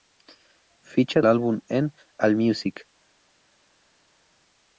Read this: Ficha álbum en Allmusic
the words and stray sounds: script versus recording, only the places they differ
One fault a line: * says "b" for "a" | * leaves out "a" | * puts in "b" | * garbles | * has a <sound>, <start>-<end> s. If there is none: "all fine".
all fine